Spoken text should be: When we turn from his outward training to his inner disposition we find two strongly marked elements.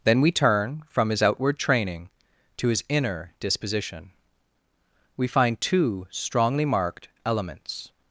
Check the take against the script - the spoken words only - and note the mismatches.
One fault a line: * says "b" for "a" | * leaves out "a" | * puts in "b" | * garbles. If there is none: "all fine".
* says "Then" for "When"